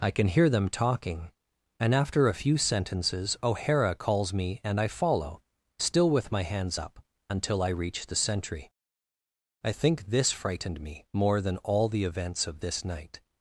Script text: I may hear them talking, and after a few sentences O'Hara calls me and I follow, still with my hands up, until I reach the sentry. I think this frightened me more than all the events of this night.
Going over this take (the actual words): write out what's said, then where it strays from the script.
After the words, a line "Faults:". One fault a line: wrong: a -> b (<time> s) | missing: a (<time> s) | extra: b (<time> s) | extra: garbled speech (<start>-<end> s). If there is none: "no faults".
I can hear them talking, and after a few sentences O'Hara calls me and I follow, still with my hands up, until I reach the sentry. I think this frightened me more than all the events of this night.
Faults:
wrong: may -> can (0.1 s)